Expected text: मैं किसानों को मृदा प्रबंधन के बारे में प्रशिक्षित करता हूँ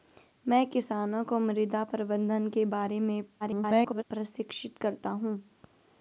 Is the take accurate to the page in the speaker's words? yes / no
no